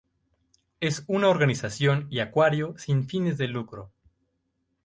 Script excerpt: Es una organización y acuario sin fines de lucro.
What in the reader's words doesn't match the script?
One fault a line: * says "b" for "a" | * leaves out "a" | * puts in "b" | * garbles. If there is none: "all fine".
all fine